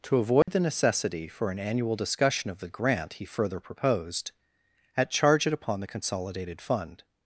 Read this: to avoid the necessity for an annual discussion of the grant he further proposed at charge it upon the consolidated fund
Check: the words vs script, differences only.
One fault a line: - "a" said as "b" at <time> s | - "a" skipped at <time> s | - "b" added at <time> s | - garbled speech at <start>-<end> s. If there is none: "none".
none